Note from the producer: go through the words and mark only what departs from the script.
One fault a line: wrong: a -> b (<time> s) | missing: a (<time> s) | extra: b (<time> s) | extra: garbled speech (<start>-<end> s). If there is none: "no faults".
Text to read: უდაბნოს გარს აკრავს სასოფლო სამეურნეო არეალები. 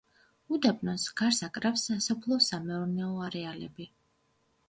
no faults